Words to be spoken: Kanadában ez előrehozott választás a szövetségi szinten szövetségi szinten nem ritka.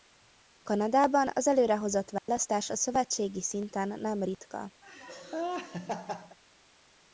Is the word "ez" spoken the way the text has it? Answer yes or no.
no